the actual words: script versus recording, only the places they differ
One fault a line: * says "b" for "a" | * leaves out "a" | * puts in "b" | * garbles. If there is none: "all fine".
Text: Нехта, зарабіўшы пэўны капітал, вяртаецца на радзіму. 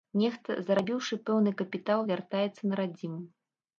all fine